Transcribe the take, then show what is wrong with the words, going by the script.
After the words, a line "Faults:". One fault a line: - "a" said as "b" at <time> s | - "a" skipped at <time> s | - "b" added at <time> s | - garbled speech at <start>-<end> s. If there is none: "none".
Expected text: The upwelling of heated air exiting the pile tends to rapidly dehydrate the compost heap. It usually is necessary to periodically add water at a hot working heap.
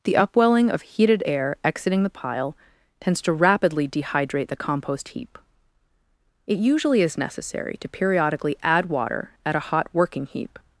The upwelling of heated air exiting the pile tends to rapidly dehydrate the compost heap. It usually is necessary to periodically add water at a hot working heap.
Faults:
none